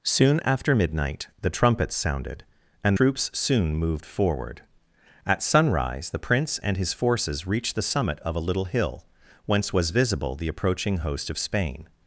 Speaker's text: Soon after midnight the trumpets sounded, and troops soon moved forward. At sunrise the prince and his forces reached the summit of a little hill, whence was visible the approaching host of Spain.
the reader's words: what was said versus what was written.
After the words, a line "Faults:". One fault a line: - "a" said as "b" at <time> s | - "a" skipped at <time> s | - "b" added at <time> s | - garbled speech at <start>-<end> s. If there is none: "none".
Soon after midnight the trumpets sounded, and troops soon moved forward. At sunrise the prince and his forces reached the summit of a little hill, whence was visible the approaching host of Spain.
Faults:
none